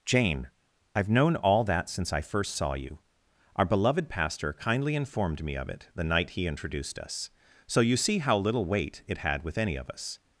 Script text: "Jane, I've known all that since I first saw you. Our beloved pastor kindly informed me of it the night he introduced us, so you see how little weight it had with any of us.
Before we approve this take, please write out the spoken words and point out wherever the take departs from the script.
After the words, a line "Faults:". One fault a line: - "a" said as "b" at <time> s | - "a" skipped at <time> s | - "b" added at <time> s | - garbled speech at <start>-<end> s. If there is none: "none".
"Jane, I've known all that since I first saw you. Our beloved pastor kindly informed me of it the night he introduced us, so you see how little weight it had with any of us.
Faults:
none